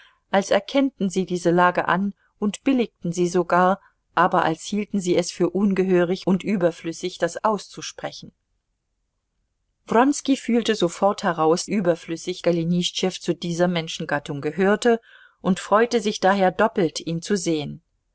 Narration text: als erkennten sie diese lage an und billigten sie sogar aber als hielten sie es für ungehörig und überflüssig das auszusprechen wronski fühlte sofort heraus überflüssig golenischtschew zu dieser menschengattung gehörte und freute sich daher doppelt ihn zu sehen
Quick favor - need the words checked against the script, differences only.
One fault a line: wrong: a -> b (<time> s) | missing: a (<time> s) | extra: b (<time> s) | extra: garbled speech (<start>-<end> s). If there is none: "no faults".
no faults